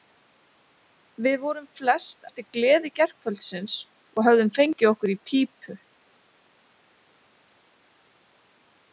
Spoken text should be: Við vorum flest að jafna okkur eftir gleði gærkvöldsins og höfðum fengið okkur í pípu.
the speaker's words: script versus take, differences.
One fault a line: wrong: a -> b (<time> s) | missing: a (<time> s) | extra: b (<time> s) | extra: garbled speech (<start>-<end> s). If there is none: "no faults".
missing: að jafna okkur (2.2 s)